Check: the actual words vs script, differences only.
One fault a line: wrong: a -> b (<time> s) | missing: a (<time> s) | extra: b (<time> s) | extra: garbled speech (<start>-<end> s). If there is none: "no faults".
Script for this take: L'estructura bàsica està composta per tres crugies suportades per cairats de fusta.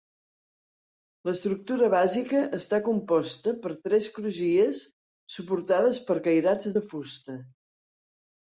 no faults